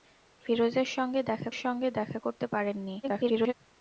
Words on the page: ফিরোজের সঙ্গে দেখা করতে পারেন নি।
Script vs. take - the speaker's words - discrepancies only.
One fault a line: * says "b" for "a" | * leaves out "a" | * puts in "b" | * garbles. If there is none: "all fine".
* puts in "সঙ্গে দেখা"
* garbles